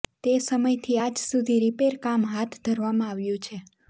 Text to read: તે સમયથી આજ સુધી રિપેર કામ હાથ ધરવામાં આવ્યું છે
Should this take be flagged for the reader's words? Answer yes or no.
no